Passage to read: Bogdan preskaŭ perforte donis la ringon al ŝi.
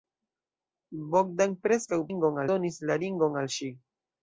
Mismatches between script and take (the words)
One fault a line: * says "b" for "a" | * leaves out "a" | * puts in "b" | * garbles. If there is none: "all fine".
* says "ringon" for "perforte"